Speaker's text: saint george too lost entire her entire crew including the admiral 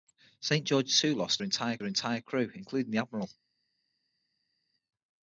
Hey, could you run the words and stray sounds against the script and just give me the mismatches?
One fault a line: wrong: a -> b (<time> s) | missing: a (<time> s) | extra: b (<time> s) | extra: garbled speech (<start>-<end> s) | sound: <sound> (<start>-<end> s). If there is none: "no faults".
no faults